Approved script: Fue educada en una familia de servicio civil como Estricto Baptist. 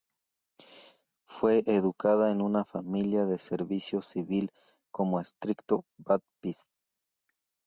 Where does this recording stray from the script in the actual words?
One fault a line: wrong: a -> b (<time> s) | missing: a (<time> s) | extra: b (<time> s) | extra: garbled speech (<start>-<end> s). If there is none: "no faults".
no faults